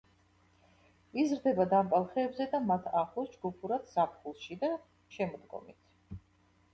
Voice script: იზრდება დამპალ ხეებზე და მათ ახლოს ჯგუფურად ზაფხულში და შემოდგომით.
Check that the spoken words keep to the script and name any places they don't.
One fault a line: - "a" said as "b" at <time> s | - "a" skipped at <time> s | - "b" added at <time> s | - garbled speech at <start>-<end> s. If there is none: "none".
none